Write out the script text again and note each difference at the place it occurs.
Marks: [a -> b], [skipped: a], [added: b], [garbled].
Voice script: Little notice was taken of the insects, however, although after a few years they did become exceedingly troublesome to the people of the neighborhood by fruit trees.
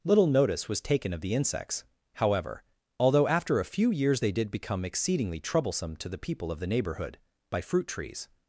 Little notice was taken of the insects, however, although after a few years they did become exceedingly troublesome to the people of the neighborhood by fruit trees.